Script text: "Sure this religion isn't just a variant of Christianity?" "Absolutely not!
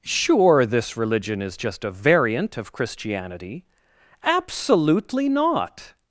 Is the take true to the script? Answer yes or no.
no